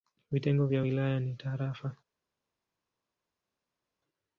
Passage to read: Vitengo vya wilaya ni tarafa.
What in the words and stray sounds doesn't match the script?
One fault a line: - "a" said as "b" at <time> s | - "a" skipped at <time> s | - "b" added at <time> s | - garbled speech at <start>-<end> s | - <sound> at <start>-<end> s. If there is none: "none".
none